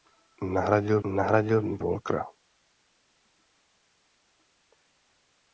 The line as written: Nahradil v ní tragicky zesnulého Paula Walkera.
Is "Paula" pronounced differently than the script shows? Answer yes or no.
yes